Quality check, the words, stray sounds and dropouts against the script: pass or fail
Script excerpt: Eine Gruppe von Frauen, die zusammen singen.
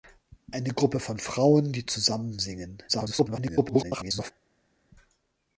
fail